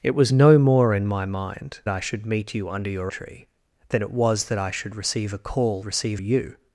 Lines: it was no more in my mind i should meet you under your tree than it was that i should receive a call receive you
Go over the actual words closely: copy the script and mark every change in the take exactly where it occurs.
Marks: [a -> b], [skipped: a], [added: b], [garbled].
it was no more in my mind i should meet you under your tree than it was that i should receive a call receive you